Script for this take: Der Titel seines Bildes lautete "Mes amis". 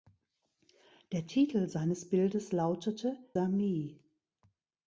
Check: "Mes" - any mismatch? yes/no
yes